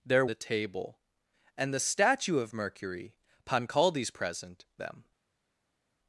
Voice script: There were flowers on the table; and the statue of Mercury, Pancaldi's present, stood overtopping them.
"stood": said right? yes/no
no